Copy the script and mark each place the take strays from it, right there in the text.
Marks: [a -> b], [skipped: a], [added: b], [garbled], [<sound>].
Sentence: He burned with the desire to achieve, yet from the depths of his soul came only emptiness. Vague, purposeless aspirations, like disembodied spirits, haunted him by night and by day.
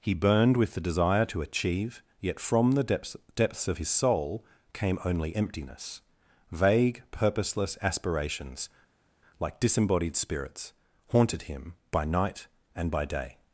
He burned with the desire to achieve, yet from the depths [added: depths] of his soul came only emptiness. Vague, purposeless aspirations, like disembodied spirits, haunted him by night and by day.